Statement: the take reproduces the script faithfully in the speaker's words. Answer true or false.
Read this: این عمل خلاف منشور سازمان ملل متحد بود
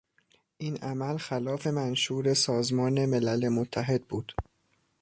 true